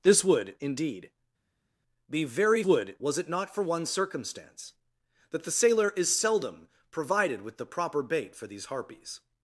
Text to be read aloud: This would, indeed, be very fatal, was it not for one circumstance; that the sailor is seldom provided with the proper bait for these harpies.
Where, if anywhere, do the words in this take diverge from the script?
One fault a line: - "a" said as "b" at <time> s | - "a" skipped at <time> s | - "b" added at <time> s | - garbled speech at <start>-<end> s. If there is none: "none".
- "fatal" said as "would" at 2.6 s